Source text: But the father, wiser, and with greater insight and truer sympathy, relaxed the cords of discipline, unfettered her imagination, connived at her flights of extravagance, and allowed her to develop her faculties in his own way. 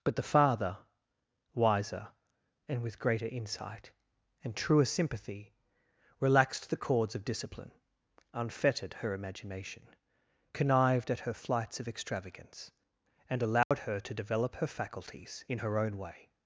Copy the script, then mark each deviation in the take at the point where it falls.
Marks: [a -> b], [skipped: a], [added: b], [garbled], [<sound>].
But the father, wiser, and with greater insight and truer sympathy, relaxed the cords of discipline, unfettered her imagination, connived at her flights of extravagance, and allowed [dropout] her to develop her faculties in [his -> her] own way.